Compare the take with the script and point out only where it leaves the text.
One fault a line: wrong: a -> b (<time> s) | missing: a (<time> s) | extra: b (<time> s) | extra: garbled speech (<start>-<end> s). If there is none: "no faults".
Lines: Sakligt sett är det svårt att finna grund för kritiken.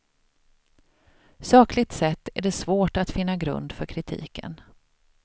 no faults